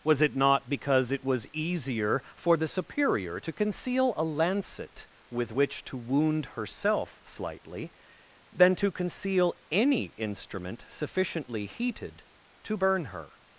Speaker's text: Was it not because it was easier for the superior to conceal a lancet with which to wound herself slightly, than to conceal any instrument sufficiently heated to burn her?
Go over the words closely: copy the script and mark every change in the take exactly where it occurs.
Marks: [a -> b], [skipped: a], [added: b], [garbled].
Was it not because it was easier for the superior to conceal a lancet with which to wound herself slightly, than to conceal any instrument sufficiently heated to burn her?